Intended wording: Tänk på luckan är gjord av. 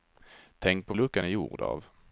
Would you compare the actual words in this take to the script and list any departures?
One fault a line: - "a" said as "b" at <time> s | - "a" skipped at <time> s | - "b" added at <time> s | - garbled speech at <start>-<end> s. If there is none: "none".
none